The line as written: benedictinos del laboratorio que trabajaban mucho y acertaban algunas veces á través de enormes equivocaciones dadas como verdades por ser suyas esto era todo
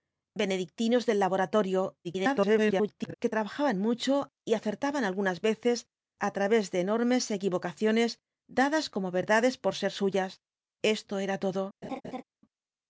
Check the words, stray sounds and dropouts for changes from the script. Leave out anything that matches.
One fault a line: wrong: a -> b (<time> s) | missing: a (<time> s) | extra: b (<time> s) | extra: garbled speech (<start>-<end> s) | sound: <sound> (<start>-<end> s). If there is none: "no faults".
extra: garbled speech (2.0-3.1 s)
sound: laugh (11.8-12.2 s)